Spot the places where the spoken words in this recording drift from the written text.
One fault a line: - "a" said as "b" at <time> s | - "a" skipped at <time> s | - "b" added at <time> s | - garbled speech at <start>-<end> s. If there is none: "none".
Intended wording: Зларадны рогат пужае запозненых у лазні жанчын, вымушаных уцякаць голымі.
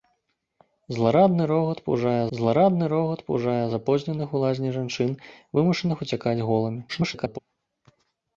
- "зларадны рогат пужае" added at 2.4 s
- garbled speech at 6.9-7.4 s